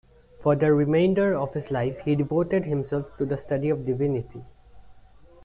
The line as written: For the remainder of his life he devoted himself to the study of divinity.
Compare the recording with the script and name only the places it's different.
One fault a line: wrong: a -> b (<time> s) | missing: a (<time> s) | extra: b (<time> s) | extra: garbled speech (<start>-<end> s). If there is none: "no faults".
no faults